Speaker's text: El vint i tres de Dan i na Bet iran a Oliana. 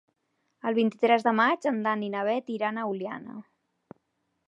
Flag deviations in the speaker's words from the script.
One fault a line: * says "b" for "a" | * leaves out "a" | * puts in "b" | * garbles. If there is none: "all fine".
* puts in "maig en"